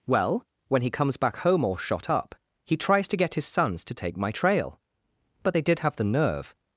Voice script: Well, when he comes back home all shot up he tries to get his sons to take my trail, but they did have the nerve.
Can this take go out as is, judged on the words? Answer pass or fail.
pass